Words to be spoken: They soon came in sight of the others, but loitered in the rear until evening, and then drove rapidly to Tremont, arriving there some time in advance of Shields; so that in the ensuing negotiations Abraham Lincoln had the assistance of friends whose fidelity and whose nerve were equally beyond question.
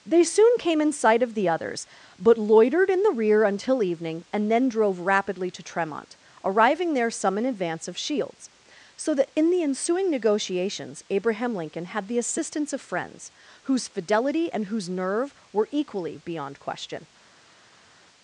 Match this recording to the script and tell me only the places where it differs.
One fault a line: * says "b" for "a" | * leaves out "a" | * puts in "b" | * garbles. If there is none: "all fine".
* leaves out "time"